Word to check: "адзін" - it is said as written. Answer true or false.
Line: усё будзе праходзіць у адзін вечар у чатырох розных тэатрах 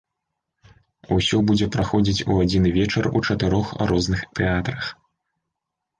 true